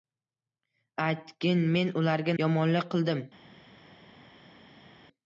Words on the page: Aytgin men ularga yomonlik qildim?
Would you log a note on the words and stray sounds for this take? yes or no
no